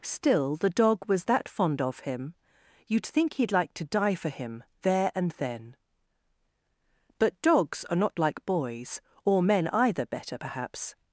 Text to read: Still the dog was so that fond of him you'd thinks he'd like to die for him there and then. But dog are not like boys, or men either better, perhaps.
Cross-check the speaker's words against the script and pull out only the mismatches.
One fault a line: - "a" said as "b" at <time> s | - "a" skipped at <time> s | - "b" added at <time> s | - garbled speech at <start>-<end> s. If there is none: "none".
- "so" skipped at 1.2 s
- "thinks" said as "think" at 3.0 s
- "dog" said as "dogs" at 7.4 s